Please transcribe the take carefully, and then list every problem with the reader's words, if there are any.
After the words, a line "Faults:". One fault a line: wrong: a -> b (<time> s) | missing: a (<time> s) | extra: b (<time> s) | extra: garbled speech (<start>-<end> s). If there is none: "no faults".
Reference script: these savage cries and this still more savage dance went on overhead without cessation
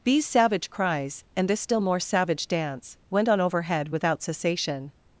these savage cries and this still more savage dance went on overhead without cessation
Faults:
no faults